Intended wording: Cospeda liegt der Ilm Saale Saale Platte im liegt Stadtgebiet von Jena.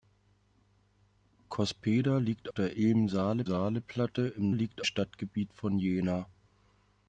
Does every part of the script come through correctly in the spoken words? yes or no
yes